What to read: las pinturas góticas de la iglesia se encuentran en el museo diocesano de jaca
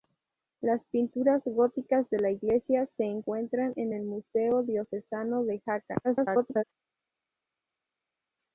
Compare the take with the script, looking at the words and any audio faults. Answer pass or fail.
fail